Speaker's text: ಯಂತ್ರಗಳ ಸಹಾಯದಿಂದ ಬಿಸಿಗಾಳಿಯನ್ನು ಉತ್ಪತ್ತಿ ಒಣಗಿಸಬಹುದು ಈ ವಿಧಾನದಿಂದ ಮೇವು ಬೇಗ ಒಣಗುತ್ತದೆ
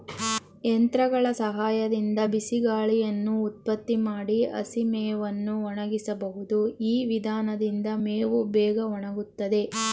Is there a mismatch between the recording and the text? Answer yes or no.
yes